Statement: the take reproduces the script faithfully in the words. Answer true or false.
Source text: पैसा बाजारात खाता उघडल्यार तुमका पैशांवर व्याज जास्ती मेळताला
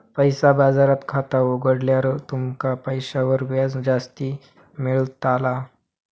true